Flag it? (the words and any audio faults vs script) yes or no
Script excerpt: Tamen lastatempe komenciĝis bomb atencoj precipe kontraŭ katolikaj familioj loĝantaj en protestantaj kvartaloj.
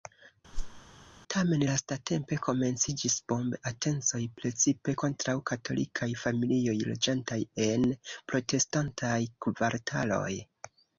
yes